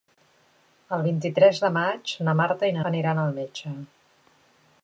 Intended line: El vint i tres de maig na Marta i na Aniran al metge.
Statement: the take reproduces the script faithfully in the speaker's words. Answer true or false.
true